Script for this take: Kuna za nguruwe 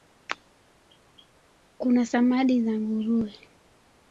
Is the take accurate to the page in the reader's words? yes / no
no